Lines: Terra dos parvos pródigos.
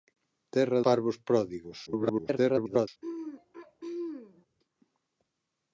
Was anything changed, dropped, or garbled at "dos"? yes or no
yes